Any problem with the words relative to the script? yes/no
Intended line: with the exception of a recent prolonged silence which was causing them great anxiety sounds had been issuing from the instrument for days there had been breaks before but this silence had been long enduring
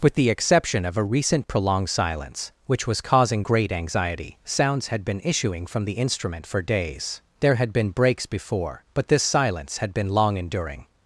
yes